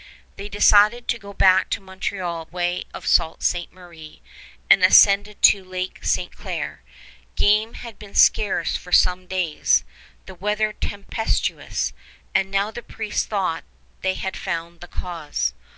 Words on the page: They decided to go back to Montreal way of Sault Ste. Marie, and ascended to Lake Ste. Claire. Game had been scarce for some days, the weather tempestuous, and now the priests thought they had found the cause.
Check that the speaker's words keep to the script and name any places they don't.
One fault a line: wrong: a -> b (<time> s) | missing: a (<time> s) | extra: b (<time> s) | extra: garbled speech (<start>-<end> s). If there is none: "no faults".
no faults